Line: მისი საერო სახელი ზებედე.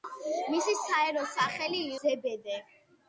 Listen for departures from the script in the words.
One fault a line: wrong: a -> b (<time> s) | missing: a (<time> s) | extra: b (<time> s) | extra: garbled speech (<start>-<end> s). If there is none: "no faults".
no faults